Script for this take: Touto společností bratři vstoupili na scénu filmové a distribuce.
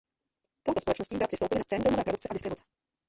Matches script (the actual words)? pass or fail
fail